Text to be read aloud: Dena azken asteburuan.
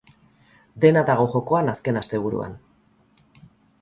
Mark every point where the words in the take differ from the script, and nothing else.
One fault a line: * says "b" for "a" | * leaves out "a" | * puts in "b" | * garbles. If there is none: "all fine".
* puts in "dago jokoan"